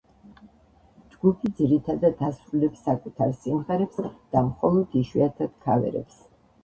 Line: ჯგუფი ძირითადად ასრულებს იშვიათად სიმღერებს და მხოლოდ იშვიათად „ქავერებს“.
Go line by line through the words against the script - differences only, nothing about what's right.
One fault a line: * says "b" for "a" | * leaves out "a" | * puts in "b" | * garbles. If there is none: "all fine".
* says "საკუთარ" for "იშვიათად"